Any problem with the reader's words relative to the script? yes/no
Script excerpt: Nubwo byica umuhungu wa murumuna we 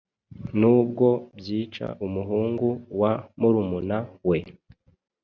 no